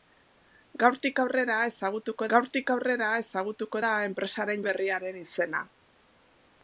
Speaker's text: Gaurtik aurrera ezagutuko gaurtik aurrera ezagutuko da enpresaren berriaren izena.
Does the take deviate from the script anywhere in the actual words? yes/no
no